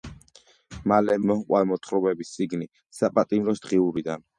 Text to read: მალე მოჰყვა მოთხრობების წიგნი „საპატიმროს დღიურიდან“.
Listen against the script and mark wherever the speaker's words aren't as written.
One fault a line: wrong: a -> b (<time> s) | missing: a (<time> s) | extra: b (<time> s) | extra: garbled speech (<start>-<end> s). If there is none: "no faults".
no faults